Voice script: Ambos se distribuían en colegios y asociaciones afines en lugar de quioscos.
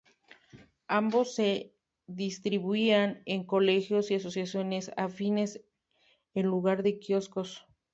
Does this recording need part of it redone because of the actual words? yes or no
no